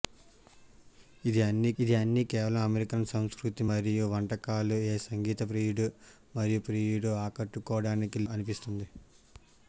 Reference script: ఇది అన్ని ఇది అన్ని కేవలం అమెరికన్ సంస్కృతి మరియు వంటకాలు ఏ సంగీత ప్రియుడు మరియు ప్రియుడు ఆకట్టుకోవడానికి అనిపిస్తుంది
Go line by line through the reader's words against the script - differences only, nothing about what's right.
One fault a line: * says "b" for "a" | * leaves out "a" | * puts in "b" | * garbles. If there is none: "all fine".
all fine